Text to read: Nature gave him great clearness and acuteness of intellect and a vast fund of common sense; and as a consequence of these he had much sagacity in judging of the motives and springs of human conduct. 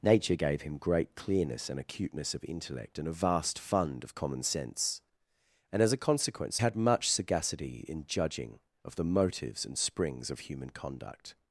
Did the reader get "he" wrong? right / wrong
wrong